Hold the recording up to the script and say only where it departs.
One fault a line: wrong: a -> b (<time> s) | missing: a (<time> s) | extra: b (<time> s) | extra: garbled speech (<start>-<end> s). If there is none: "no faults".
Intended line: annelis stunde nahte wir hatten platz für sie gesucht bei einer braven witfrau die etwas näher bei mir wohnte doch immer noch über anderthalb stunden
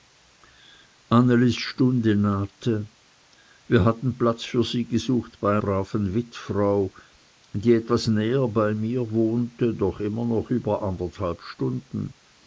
missing: einer (5.5 s)